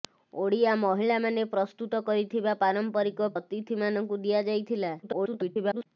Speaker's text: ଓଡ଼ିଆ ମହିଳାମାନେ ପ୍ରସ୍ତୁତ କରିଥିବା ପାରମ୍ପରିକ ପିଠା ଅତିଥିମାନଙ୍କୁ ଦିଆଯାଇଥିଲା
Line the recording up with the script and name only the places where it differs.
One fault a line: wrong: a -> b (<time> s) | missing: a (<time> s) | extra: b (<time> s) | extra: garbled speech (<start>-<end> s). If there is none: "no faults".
missing: ପିଠା (3.3 s)
extra: garbled speech (5.0-5.9 s)